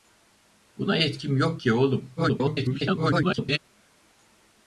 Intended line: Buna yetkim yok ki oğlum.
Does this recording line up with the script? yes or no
no